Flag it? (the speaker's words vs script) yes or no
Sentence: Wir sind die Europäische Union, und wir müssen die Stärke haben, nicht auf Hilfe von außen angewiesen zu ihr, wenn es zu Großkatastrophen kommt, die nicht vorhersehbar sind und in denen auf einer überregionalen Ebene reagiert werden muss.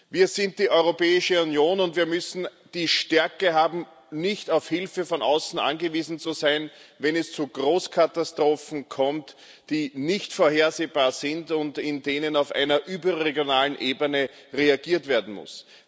yes